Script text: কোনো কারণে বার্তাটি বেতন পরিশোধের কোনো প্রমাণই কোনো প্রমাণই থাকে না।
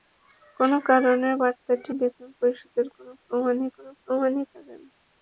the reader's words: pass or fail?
pass